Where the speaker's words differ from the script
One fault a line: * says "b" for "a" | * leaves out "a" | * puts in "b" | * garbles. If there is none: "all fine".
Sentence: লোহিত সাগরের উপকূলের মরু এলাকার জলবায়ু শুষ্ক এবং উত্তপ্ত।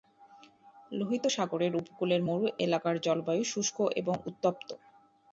all fine